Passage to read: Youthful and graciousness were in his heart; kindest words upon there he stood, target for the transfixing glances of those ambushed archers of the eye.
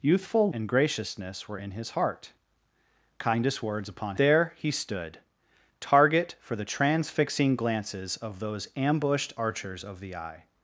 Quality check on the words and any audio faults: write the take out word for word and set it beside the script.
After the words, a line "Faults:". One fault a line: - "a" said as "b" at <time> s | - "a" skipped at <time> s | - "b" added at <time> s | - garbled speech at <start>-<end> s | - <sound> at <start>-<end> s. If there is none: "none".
Youthful and graciousness were in his heart; kindest words upon there he stood, target for the transfixing glances of those ambushed archers of the eye.
Faults:
none